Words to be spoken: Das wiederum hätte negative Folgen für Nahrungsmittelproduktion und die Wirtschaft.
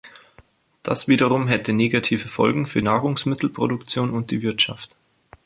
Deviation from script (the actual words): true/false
false